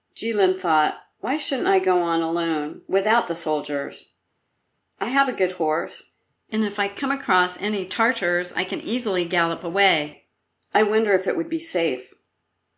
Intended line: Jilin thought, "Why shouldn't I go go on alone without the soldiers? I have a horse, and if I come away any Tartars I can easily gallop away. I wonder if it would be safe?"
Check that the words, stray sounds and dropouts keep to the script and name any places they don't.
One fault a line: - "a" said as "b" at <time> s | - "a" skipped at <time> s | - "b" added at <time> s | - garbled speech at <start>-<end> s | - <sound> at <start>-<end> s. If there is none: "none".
- "go" skipped at 2.0 s
- "good" added at 5.3 s
- "away" said as "across" at 7.1 s